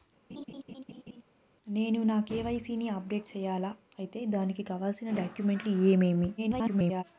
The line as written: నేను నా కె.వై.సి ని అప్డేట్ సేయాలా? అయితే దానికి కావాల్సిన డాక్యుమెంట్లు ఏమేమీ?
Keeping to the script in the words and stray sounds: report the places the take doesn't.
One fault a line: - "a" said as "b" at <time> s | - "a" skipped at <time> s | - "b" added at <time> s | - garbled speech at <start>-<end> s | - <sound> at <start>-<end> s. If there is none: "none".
- laugh at 0.3-1.2 s
- garbled speech at 6.4-7.0 s